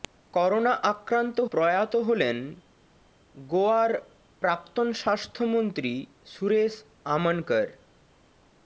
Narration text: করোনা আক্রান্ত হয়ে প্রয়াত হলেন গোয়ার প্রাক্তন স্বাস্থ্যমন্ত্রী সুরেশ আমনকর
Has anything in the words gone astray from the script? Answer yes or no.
yes